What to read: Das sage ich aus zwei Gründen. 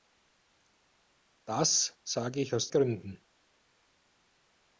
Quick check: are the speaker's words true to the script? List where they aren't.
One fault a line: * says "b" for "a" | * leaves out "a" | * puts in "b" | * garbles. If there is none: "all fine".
* leaves out "zwei"